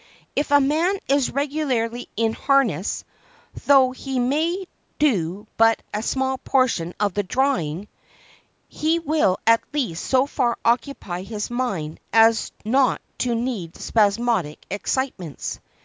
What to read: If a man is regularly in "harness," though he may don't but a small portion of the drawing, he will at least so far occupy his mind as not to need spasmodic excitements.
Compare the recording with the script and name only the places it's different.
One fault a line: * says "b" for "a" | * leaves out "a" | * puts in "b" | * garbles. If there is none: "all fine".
* says "do" for "don't"